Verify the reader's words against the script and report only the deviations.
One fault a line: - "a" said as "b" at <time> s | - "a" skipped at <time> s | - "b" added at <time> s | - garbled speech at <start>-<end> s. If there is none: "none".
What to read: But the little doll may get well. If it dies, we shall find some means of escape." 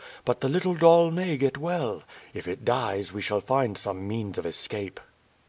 none